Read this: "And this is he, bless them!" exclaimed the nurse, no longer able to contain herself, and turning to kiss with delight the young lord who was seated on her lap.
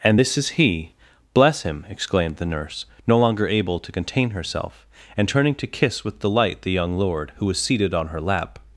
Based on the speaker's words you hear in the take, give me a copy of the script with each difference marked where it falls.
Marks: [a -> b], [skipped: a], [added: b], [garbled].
"And this is he, bless [them!" -> him] exclaimed the nurse, no longer able to contain herself, and turning to kiss with delight the young lord who was seated on her lap.